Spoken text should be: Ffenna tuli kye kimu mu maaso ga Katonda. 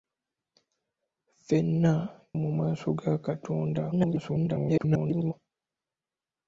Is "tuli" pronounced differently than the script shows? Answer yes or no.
yes